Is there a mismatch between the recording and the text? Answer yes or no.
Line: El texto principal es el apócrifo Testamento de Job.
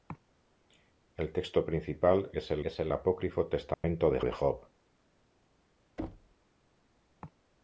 yes